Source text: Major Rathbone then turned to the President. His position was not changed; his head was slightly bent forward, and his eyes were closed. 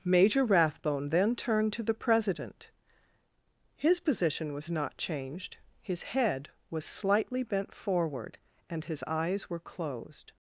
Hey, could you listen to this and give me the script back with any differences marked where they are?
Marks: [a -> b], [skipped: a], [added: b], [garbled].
Major Rathbone then turned to the President. His position was not changed; his head was slightly bent forward, and his eyes were closed.